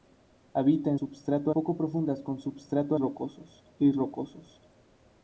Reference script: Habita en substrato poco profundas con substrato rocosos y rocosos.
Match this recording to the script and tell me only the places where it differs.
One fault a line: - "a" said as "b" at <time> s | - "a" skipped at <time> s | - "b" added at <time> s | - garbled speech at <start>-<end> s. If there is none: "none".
none